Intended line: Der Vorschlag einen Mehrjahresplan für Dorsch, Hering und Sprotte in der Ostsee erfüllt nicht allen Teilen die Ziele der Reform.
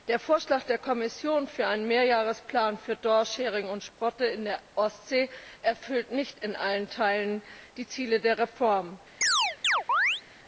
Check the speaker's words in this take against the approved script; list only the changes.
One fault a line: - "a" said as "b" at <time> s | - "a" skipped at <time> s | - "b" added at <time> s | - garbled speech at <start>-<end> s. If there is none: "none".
- "der Kommission für" added at 0.6 s
- "in" added at 6.4 s